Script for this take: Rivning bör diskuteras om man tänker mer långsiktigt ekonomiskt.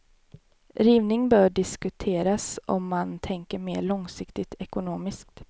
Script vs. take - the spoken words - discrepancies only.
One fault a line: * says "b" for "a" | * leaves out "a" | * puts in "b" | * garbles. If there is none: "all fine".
all fine